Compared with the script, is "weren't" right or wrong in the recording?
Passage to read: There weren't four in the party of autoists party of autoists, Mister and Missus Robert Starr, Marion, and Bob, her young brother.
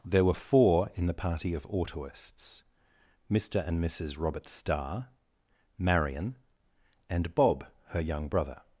wrong